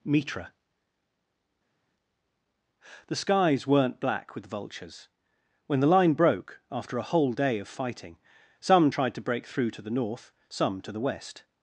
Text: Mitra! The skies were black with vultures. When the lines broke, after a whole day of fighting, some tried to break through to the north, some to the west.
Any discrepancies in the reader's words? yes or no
yes